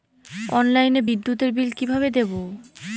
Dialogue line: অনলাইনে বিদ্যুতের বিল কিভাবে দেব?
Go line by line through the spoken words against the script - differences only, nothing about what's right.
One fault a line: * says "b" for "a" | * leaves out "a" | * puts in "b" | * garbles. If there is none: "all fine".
all fine